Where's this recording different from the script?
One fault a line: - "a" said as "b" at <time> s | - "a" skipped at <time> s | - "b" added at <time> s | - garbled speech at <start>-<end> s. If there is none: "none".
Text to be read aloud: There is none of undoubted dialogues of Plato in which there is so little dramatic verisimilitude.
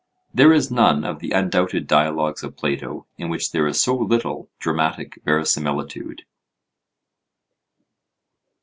- "the" added at 1.2 s